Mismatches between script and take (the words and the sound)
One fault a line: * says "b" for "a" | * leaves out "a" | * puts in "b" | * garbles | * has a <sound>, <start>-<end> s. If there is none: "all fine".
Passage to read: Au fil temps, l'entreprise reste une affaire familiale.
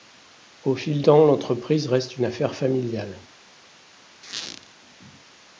* has a squeak, 4.2-4.7 s